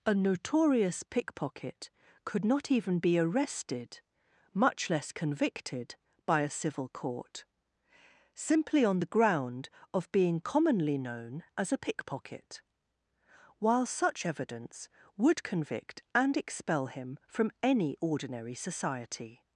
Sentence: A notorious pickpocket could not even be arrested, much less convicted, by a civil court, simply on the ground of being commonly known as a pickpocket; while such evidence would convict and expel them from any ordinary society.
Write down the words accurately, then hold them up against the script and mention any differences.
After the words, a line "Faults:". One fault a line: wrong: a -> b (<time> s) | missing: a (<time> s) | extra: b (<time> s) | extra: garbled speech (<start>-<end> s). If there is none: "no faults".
A notorious pickpocket could not even be arrested, much less convicted, by a civil court, simply on the ground of being commonly known as a pickpocket; while such evidence would convict and expel him from any ordinary society.
Faults:
wrong: them -> him (16.9 s)